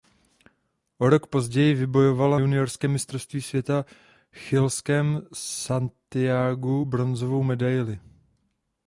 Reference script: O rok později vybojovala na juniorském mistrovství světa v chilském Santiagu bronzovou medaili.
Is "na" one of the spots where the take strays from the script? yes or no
yes